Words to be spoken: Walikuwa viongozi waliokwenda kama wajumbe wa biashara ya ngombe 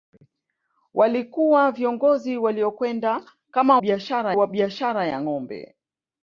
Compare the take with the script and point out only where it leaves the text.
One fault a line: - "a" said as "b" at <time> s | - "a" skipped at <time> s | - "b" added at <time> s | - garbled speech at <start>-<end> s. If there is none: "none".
- "wajumbe" said as "biashara" at 3.8 s